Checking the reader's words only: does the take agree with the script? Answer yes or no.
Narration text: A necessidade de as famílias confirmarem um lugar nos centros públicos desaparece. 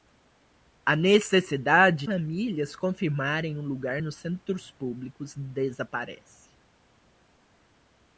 no